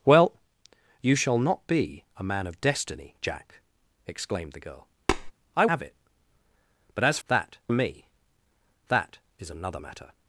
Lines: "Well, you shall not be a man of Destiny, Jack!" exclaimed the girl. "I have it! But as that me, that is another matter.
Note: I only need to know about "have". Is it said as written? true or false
true